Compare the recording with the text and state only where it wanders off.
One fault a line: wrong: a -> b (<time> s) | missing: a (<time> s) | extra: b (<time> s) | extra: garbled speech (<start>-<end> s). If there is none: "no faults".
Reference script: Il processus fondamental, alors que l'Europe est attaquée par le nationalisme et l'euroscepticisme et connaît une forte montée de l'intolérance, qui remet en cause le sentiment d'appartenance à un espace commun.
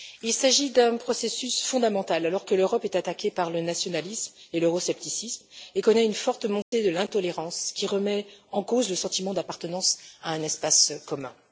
extra: s'agit d'un (0.3 s)